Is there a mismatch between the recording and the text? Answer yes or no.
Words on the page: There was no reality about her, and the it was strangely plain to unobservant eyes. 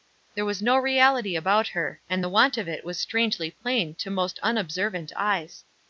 yes